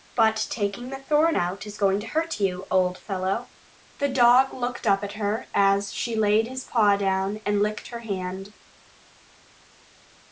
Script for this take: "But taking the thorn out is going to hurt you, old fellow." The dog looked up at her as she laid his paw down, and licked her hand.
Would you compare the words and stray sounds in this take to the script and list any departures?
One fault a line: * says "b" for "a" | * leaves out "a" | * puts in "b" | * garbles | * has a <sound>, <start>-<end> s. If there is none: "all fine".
all fine